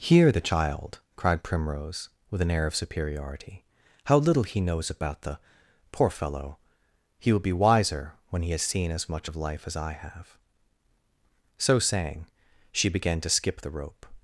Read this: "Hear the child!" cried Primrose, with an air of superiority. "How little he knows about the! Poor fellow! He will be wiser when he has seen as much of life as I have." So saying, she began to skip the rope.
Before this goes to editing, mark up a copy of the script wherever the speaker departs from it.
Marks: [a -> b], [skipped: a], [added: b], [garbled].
"Hear the child!" cried Primrose, with an air of superiority. "How little he knows about the! Poor fellow! He will be wiser when he has seen as much of life as I have." So saying, she began to skip the rope.